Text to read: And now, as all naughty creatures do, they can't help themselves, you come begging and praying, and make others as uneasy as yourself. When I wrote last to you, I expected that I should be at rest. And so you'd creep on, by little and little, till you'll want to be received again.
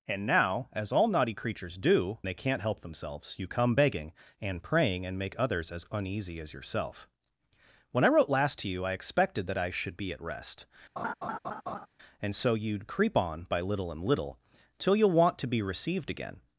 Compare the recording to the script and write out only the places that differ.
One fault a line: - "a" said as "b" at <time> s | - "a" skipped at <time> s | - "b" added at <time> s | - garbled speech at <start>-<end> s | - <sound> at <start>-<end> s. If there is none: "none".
- laugh at 11.0-11.9 s